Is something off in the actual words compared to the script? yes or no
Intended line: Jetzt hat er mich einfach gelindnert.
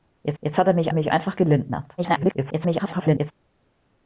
yes